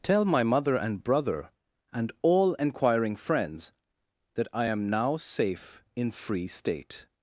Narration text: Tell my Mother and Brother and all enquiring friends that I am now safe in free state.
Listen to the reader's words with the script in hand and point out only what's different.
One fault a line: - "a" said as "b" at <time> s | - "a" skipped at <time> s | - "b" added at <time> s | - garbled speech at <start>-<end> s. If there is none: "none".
none